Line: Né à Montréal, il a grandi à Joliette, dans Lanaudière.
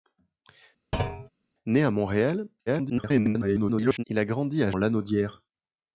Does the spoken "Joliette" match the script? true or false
false